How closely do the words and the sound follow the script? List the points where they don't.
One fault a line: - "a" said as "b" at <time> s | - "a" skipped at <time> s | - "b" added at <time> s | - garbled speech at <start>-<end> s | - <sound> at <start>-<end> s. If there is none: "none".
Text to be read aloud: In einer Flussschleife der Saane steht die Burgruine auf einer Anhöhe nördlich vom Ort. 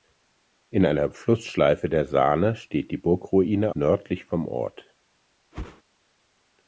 - "auf einer Anhöhe" skipped at 3.8 s
- whoosh at 5.5-5.8 s